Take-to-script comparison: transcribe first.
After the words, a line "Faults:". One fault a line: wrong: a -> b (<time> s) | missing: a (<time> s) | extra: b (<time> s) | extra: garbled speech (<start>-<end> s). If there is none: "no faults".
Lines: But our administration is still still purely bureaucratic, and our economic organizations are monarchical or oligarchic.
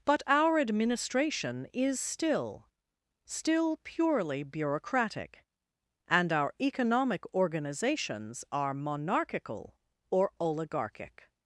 But our administration is still still purely bureaucratic, and our economic organizations are monarchical or oligarchic.
Faults:
no faults